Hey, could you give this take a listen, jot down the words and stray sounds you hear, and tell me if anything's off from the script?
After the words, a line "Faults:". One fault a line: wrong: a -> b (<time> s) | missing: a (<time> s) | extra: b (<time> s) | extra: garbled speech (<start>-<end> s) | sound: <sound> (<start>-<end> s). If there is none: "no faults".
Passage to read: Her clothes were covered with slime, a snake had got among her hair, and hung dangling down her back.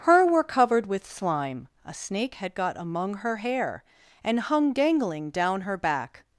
Her were covered with slime, a snake had got among her hair, and hung dangling down her back.
Faults:
missing: clothes (0.3 s)